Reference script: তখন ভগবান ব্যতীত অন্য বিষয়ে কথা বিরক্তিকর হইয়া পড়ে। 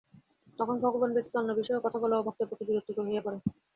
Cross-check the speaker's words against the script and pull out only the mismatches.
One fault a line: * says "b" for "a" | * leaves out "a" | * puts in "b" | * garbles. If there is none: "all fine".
* puts in "বলাও ভক্তের পক্ষে"